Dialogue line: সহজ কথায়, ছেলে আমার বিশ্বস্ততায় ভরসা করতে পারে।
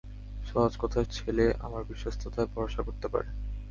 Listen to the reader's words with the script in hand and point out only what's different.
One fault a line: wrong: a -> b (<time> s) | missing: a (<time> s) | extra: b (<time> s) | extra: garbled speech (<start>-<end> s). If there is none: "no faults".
no faults